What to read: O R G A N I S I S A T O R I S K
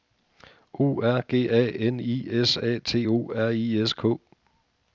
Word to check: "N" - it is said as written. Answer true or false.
true